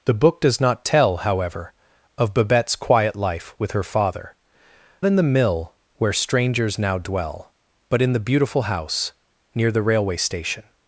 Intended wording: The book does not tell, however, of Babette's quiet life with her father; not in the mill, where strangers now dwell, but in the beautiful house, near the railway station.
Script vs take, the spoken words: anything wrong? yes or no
yes